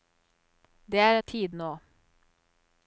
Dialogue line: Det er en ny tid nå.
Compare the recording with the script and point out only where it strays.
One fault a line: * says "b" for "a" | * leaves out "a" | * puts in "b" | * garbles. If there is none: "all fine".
* leaves out "en ny"